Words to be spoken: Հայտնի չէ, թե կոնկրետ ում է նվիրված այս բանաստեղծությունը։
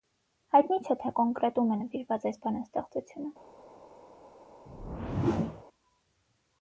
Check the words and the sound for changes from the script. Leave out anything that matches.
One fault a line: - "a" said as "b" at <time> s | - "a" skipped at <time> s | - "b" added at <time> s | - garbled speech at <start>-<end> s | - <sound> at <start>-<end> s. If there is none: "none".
- whoosh at 4.7-5.6 s